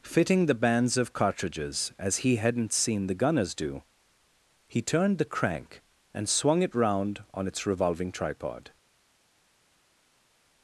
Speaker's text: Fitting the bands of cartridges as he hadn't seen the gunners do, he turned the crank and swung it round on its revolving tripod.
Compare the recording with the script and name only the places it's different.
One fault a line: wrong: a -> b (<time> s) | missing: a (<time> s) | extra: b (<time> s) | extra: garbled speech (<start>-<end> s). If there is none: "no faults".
no faults